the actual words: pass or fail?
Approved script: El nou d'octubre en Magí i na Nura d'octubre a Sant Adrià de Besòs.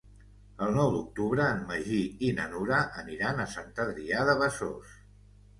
fail